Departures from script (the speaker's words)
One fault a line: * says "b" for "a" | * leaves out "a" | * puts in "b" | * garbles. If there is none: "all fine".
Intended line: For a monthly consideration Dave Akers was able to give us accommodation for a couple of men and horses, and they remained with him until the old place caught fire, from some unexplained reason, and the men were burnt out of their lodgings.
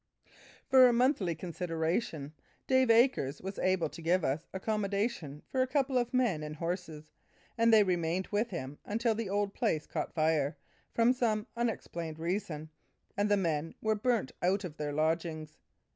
all fine